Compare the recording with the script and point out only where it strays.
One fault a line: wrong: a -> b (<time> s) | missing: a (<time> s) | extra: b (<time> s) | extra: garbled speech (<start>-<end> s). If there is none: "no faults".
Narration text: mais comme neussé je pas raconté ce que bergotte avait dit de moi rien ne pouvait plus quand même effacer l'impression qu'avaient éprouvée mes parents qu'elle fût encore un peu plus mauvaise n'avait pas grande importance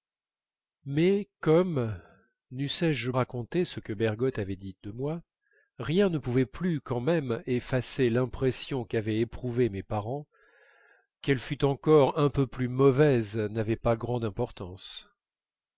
missing: pas (3.1 s)